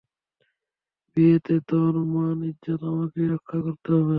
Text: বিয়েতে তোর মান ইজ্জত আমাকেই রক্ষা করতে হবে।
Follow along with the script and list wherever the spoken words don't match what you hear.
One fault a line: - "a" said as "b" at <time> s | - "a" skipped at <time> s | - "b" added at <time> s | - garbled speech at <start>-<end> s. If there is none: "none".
none